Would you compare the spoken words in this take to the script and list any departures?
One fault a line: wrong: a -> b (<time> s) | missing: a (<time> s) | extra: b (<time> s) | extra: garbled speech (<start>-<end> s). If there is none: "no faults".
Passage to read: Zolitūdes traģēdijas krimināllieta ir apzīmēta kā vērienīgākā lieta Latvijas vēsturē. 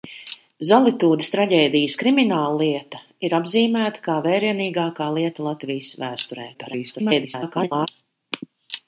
extra: garbled speech (6.5-7.9 s)